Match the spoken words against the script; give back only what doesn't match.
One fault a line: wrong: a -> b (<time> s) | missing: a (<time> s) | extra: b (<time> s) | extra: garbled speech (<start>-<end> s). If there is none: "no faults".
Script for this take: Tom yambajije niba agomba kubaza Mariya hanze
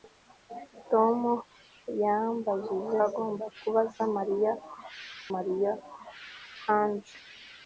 missing: niba (3.0 s)
extra: Mariya (5.3 s)